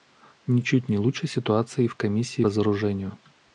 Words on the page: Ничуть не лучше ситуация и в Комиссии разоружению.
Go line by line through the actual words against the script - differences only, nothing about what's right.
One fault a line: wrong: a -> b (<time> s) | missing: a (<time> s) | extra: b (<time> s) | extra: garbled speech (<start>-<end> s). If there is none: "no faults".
no faults